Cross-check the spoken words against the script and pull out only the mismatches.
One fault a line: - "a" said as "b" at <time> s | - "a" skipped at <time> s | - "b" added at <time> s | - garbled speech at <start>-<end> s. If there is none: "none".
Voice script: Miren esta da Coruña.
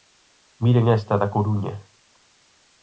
none